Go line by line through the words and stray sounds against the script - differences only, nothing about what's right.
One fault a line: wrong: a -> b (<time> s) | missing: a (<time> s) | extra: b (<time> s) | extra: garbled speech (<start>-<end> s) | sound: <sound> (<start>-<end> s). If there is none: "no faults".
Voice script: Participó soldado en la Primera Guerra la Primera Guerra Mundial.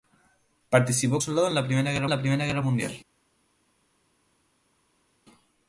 no faults